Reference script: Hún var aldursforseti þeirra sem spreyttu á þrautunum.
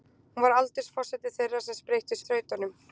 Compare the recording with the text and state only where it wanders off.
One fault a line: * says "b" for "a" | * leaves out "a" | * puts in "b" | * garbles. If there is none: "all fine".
all fine